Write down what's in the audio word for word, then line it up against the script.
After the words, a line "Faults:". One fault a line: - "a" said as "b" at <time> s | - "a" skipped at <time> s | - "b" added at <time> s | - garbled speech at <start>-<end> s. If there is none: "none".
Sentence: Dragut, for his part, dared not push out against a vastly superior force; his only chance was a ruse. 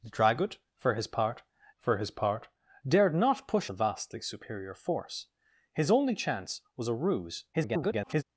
Dragut, for his part for his part, dared not push a vastly superior force; his only chance was a ruse. [garbled]
Faults:
- "for his part" added at 1.8 s
- "out against" skipped at 3.7 s
- garbled speech at 7.5-8.2 s